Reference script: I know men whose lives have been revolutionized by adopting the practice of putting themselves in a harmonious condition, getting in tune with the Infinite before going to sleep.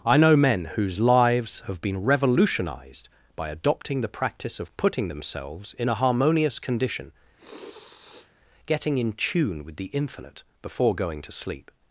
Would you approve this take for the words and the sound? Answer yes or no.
no